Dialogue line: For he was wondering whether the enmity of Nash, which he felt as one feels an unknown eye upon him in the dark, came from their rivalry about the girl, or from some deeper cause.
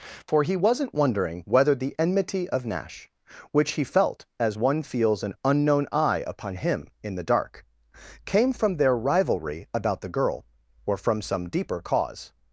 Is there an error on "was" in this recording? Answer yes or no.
yes